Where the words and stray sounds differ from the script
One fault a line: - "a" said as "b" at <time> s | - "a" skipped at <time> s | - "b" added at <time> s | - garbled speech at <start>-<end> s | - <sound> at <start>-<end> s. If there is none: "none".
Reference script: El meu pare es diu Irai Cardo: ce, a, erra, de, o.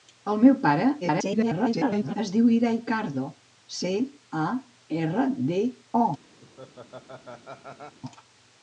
- garbled speech at 1.0-2.2 s
- laugh at 6.4-8.0 s